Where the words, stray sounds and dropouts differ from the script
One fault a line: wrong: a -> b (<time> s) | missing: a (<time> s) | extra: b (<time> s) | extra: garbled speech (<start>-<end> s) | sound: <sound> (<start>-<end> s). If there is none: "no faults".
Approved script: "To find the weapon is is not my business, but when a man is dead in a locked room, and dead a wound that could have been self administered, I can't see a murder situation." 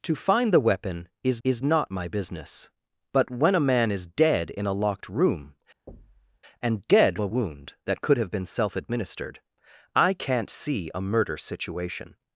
sound: thud (5.9-6.4 s)